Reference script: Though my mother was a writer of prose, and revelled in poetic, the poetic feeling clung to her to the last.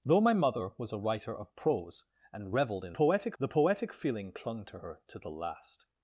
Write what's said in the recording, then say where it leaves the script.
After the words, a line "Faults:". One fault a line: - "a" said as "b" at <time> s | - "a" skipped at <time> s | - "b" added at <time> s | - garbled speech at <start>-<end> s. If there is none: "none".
Though my mother was a writer of prose, and revelled in poetic, the poetic feeling clung to her to the last.
Faults:
none